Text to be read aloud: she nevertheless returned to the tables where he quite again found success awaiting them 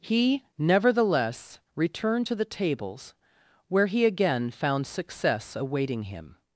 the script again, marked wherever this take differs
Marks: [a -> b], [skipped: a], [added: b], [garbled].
[she -> he] nevertheless returned to the tables where he [skipped: quite] again found success awaiting [them -> him]